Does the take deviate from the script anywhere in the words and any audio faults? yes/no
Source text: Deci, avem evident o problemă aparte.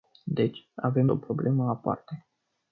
yes